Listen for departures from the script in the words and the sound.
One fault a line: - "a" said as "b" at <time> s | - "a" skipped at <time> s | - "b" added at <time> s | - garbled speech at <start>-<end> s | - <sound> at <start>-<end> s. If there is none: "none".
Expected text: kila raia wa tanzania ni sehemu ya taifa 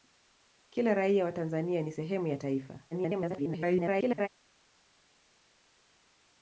- garbled speech at 2.9-4.3 s